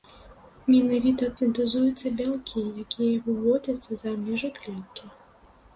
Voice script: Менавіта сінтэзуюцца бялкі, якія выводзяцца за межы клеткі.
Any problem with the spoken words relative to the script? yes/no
no